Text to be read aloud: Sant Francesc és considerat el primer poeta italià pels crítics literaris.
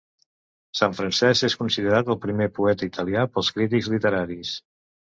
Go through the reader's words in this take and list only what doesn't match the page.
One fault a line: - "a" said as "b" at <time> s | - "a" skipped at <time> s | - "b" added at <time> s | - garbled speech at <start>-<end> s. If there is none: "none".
none